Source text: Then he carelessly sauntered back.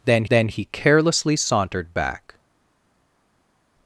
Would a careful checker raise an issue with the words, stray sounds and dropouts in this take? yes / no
yes